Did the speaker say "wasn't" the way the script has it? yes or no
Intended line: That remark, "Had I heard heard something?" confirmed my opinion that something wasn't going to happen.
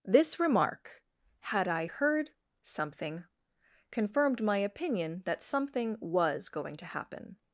no